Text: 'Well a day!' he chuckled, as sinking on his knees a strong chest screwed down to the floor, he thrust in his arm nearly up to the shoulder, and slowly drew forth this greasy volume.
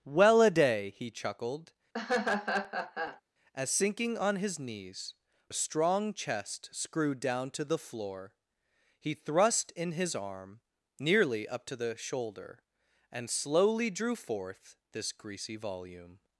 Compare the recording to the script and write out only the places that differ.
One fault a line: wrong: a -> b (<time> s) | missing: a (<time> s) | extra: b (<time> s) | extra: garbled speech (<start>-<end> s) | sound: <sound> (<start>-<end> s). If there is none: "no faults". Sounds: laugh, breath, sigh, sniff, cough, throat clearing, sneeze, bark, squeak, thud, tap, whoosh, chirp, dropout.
sound: laugh (1.9-3.2 s)